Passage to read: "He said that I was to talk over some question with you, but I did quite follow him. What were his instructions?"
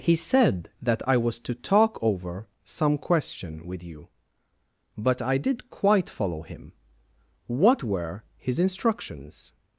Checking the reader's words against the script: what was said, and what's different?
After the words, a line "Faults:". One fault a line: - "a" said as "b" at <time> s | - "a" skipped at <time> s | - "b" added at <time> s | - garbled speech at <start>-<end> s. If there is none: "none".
"He said that I was to talk over some question with you, but I did quite follow him. What were his instructions?"
Faults:
none